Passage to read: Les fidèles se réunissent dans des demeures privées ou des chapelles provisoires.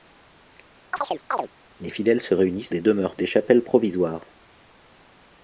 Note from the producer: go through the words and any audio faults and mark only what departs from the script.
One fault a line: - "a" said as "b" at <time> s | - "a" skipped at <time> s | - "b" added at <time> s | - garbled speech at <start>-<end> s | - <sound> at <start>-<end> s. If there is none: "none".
- chirp at 0.9-1.5 s
- "dans" skipped at 2.7 s
- "privées ou" skipped at 3.2 s